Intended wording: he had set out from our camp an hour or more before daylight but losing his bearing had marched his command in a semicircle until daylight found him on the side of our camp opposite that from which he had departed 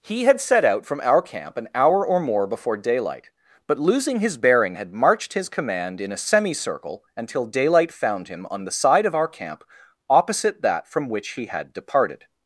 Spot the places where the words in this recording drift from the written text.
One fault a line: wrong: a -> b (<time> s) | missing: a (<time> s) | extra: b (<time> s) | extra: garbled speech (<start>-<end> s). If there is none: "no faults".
no faults